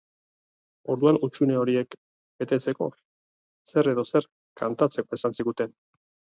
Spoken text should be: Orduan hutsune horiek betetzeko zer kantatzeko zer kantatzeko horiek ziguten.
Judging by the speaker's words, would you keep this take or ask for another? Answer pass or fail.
fail